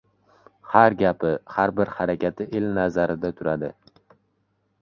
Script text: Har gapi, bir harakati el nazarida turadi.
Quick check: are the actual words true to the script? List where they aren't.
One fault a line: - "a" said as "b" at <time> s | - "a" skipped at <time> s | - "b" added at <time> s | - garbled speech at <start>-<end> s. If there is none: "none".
- "har" added at 1.6 s